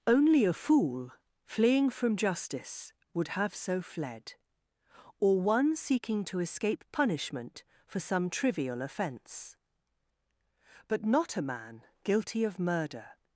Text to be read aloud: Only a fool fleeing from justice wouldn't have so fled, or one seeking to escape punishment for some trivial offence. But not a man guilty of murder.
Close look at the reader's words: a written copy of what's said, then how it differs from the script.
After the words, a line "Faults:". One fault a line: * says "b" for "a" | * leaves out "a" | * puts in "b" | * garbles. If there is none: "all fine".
Only a fool fleeing from justice would have so fled, or one seeking to escape punishment for some trivial offence. But not a man guilty of murder.
Faults:
* says "would" for "wouldn't"